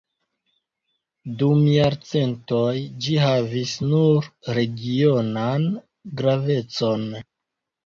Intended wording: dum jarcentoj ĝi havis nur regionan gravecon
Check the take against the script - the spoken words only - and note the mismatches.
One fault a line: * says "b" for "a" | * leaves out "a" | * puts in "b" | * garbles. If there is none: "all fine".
all fine